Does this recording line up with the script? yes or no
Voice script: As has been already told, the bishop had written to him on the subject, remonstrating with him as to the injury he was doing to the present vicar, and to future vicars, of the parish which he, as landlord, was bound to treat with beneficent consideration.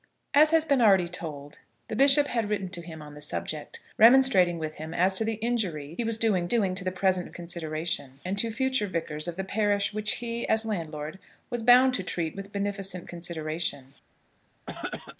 no